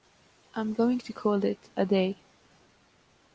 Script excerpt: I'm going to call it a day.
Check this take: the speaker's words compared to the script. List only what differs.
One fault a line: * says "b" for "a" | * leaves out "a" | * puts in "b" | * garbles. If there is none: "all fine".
all fine